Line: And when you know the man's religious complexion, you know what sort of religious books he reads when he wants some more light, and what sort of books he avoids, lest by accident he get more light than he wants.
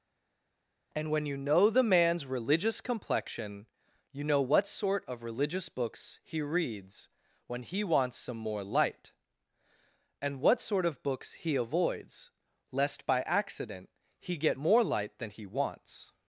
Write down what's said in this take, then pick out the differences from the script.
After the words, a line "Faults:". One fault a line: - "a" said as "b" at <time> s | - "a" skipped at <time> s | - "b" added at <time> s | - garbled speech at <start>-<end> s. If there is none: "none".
And when you know the man's religious complexion, you know what sort of religious books he reads when he wants some more light, and what sort of books he avoids, lest by accident he get more light than he wants.
Faults:
none